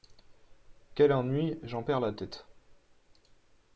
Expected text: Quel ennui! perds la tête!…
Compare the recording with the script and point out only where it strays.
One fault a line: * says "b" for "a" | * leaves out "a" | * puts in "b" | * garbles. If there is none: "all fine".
* puts in "j'en"